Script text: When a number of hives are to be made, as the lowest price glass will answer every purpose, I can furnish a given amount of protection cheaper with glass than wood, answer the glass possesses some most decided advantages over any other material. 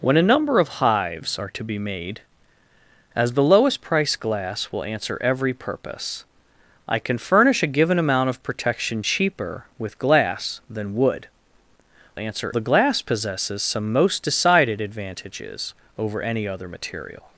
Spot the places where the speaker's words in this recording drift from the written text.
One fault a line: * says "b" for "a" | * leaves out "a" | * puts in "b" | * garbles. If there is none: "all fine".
all fine